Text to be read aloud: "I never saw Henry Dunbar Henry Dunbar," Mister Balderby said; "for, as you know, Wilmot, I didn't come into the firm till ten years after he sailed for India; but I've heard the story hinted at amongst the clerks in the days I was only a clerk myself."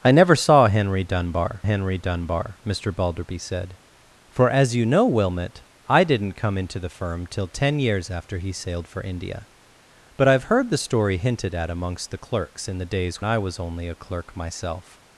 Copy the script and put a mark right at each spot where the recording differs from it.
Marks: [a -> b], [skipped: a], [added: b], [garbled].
"I never saw Henry Dunbar Henry Dunbar," Mister Balderby said; "for, as you know, Wilmot, I didn't come into the firm till ten years after he sailed for India; but I've heard the story hinted at amongst the clerks in the days I was only a clerk myself."